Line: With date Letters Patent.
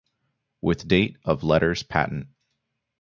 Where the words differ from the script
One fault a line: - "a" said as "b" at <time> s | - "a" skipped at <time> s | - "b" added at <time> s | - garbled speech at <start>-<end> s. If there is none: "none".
- "of" added at 1.2 s